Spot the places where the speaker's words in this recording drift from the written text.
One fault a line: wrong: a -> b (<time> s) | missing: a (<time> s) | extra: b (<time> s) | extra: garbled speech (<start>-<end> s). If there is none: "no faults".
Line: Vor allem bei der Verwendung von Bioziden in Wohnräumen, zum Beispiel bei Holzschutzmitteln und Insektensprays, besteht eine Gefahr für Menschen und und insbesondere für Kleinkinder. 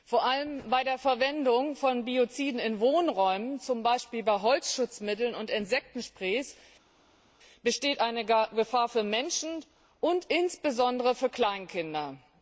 missing: und (10.3 s)